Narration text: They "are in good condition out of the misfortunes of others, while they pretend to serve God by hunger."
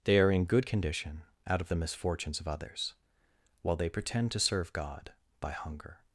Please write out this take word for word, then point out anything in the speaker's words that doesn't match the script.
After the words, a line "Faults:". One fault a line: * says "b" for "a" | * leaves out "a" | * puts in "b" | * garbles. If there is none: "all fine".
They "are in good condition out of the misfortunes of others, while they pretend to serve God by hunger."
Faults:
all fine